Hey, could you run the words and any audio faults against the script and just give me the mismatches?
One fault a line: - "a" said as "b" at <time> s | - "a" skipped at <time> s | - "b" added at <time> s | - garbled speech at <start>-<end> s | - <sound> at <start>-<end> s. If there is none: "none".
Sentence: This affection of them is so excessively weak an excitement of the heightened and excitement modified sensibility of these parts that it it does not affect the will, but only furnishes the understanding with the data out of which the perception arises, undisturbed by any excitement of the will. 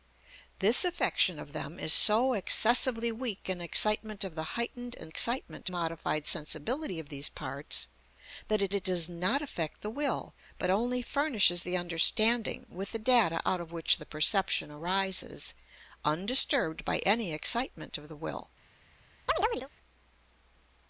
- chirp at 19.3-19.7 s